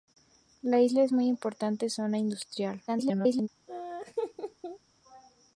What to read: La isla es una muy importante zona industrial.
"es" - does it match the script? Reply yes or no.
yes